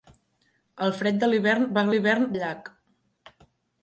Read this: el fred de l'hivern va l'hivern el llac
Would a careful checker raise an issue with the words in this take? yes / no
no